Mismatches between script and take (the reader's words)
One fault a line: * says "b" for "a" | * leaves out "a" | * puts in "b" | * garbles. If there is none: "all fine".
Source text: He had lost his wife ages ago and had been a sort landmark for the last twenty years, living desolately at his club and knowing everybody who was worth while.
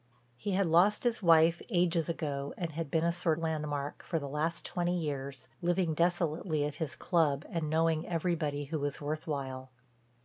all fine